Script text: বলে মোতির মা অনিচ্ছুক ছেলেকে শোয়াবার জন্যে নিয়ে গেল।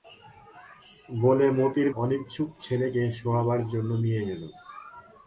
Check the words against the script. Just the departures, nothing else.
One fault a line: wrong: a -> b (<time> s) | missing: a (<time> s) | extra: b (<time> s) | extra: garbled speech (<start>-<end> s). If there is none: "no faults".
missing: মা (1.9 s)